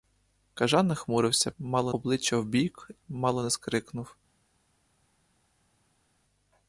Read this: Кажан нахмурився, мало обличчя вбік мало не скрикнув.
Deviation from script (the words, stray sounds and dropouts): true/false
false